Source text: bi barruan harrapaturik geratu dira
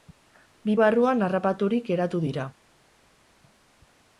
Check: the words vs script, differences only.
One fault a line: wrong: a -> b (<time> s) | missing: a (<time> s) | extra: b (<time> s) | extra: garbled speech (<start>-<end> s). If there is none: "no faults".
no faults